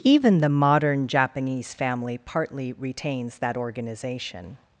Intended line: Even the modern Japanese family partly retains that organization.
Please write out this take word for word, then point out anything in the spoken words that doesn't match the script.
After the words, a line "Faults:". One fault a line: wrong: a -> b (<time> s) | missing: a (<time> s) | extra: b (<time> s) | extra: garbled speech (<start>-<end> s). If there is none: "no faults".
Even the modern Japanese family partly retains that organization.
Faults:
no faults